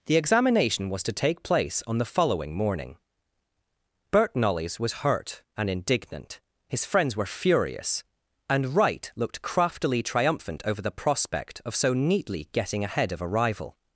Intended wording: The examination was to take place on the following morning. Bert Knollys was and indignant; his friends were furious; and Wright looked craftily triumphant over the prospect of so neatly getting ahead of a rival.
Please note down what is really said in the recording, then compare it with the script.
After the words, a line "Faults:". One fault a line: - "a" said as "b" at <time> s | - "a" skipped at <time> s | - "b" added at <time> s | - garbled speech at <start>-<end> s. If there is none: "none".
The examination was to take place on the following morning. Bert Knollys was hurt and indignant; his friends were furious; and Wright looked craftily triumphant over the prospect of so neatly getting ahead of a rival.
Faults:
- "hurt" added at 4.9 s